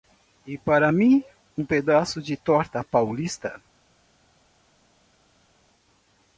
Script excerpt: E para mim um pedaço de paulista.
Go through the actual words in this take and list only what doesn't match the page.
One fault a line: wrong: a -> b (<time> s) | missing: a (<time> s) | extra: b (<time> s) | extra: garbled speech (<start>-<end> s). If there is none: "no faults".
extra: torta (2.3 s)